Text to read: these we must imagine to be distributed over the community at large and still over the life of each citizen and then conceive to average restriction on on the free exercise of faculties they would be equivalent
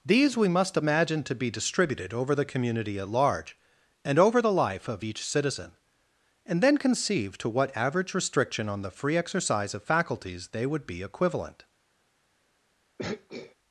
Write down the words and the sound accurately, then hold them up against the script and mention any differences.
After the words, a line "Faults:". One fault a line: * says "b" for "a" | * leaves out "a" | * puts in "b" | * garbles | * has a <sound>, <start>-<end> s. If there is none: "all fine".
these we must imagine to be distributed over the community at large and over the life of each citizen and then conceive to what average restriction on the free exercise of faculties they would be equivalent
Faults:
* leaves out "still"
* puts in "what"
* leaves out "on"
* has a throat clearing, 13.0-13.6 s